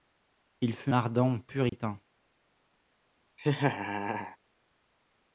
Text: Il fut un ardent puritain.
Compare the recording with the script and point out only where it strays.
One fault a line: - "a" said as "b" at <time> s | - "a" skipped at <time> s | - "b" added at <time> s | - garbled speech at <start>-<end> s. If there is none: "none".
- "un" skipped at 0.9 s